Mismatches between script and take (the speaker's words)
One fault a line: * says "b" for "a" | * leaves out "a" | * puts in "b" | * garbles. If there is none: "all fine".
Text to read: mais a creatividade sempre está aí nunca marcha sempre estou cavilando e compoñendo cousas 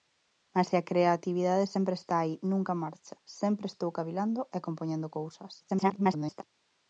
* garbles